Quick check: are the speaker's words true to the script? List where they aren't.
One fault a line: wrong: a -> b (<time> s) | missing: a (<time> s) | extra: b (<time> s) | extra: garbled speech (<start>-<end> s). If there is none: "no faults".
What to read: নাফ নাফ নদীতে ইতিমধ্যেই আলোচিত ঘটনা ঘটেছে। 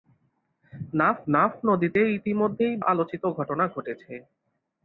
no faults